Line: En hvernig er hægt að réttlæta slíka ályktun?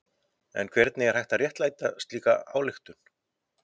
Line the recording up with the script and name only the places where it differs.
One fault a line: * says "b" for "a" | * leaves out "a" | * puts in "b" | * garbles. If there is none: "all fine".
all fine